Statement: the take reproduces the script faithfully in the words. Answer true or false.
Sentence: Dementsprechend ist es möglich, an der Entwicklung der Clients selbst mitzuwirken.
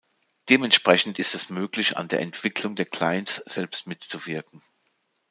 true